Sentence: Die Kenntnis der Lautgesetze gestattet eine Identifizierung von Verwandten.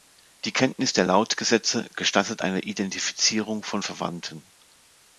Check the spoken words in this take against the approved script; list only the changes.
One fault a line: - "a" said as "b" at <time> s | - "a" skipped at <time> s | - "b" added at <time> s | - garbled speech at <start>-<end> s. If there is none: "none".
none